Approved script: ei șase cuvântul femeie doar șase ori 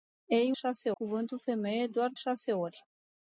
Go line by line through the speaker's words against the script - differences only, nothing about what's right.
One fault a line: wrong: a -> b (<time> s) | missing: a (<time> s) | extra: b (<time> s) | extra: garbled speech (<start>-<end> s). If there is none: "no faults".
no faults